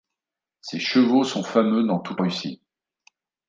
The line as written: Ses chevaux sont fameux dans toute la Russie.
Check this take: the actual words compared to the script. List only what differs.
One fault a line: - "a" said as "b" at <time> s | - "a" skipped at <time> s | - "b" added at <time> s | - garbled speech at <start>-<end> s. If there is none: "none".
- "la" skipped at 2.2 s